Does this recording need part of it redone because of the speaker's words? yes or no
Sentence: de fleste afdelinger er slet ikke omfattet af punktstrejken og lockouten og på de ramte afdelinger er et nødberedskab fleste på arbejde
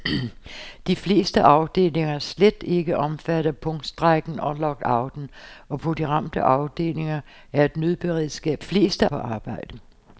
no